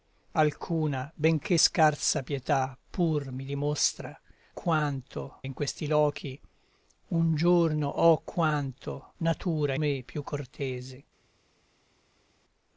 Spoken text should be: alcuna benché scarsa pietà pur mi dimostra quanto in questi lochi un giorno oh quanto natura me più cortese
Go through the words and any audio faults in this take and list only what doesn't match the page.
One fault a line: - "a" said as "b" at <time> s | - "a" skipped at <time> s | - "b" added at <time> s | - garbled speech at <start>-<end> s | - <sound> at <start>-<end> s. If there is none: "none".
none